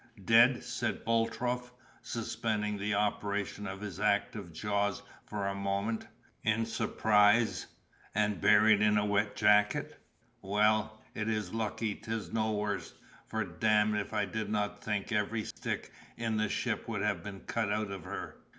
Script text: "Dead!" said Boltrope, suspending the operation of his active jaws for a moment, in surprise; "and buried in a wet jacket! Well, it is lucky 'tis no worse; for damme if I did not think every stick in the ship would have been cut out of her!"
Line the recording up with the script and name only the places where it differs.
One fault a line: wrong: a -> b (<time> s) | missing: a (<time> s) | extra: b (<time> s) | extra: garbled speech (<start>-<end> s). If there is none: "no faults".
no faults